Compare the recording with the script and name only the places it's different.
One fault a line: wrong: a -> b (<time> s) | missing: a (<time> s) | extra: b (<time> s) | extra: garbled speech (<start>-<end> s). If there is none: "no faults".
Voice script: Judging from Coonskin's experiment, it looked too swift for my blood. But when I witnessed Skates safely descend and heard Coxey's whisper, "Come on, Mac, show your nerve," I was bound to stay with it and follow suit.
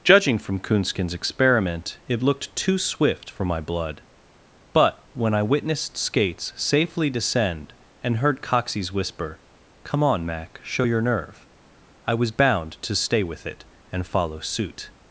no faults